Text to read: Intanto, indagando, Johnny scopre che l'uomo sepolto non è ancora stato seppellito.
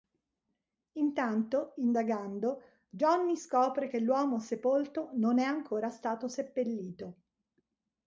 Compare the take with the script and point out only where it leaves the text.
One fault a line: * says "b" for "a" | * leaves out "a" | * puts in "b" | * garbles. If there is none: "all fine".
all fine